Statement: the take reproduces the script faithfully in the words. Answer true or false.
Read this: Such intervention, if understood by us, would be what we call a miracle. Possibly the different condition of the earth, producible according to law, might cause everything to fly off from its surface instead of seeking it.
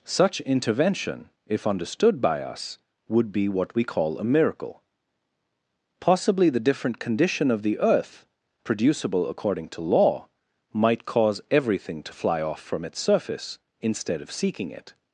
true